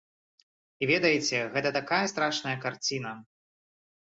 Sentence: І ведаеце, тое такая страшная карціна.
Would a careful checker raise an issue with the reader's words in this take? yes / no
yes